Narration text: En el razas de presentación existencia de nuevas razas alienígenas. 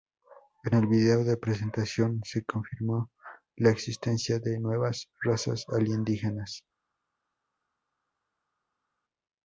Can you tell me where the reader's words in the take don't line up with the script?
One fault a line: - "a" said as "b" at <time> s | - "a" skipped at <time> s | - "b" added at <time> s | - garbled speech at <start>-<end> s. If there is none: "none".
- "razas" said as "vídeo" at 0.9 s
- "se confirmó la" added at 2.2 s